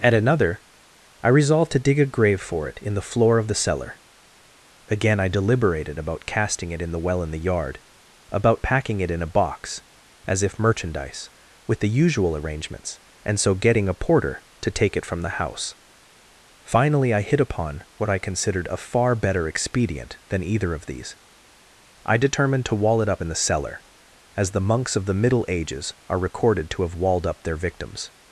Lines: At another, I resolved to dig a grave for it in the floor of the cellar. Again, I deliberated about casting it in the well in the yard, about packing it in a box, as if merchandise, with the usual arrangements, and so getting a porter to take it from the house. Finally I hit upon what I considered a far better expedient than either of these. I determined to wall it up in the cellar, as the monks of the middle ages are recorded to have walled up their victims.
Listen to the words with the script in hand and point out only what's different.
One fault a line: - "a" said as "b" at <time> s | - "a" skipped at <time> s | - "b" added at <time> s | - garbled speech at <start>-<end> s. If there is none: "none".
none